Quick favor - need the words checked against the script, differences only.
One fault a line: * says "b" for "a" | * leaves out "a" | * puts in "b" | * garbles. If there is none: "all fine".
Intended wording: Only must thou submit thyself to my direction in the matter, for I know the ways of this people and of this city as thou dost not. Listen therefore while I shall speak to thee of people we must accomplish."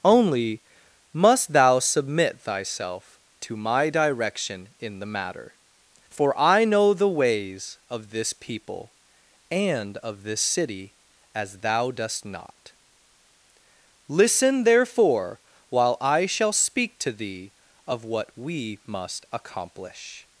* says "what" for "people"